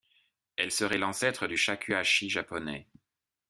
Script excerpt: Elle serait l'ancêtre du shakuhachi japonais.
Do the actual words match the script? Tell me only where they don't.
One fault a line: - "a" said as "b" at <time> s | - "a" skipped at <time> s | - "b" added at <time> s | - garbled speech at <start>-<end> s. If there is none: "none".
none